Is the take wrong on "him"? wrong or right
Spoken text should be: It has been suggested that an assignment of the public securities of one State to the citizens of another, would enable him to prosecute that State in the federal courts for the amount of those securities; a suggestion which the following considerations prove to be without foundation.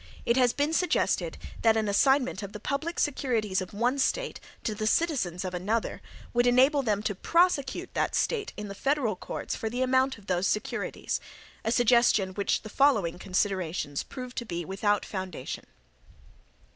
wrong